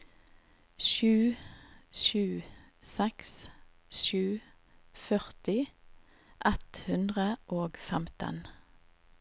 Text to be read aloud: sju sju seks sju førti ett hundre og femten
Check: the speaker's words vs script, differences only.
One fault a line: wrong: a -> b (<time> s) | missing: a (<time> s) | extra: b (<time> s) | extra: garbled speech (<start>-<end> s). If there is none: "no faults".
no faults